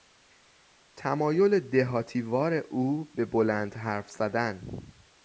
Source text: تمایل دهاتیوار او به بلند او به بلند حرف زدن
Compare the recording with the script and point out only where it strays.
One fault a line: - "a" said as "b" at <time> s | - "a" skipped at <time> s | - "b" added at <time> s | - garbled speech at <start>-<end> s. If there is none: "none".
- "او به بلند" skipped at 3.8 s